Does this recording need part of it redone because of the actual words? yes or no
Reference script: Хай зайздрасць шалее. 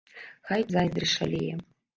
no